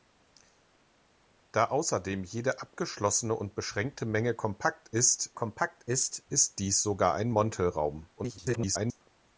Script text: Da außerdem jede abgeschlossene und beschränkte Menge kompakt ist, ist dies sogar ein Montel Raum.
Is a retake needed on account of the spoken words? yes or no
yes